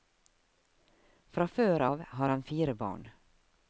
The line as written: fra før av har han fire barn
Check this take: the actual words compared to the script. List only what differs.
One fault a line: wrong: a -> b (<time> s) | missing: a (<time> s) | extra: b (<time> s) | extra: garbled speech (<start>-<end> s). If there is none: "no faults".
no faults